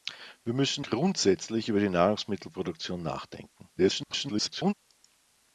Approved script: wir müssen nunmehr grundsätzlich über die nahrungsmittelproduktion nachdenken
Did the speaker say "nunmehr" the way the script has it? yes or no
no